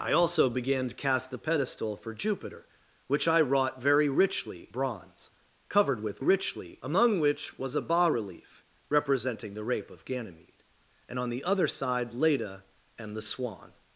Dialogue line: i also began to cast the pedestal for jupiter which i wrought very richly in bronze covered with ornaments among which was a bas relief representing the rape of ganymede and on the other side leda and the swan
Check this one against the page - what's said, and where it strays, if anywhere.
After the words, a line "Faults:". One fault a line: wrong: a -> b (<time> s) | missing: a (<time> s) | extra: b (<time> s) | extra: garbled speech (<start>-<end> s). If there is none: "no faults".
i also began to cast the pedestal for jupiter which i wrought very richly bronze covered with richly among which was a bas relief representing the rape of ganymede and on the other side leda and the swan
Faults:
missing: in (4.7 s)
wrong: ornaments -> richly (6.2 s)